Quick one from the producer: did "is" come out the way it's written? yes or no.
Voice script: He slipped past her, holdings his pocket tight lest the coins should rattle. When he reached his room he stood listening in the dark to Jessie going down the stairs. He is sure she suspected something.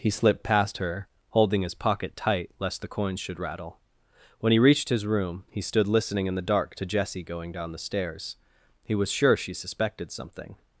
no